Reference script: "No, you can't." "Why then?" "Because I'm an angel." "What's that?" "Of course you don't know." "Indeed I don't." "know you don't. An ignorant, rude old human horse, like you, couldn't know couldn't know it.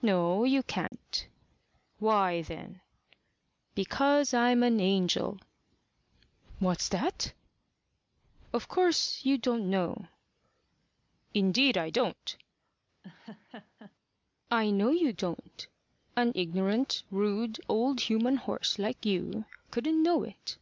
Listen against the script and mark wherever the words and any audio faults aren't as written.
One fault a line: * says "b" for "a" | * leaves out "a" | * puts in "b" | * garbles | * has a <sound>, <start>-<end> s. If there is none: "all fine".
* has a dropout, 0.9-0.9 s
* has a laugh, 13.0-13.9 s
* puts in "I"
* leaves out "couldn't know"